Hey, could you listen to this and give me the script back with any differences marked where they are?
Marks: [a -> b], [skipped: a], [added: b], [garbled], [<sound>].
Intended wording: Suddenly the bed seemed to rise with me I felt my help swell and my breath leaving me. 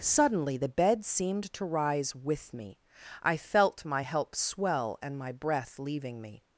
Suddenly the bed seemed to rise with me I felt my help swell and my breath leaving me.